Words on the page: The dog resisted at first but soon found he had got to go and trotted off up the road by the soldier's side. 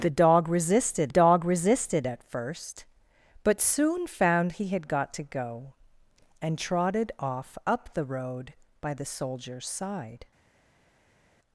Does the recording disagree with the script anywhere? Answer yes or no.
yes